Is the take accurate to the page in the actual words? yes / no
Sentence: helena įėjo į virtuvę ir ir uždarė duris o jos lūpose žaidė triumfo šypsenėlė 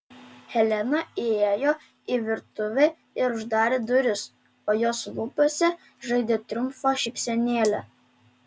no